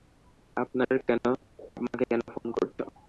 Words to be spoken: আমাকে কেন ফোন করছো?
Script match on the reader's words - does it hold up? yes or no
yes